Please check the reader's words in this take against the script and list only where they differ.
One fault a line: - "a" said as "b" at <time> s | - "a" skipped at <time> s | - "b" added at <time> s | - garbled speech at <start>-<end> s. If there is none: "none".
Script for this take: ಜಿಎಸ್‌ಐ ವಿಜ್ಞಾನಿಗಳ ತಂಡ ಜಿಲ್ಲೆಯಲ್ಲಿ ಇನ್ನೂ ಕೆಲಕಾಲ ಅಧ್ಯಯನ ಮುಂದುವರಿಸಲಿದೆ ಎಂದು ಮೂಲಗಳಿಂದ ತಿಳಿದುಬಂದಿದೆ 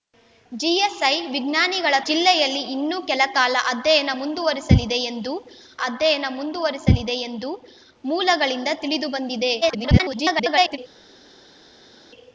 - "ತಂಡ" skipped at 1.9 s
- "ಅಧ್ಯಯನ ಮುಂದುವರಿಸಲಿದೆ ಎಂದು" added at 5.8 s
- garbled speech at 9.6-10.8 s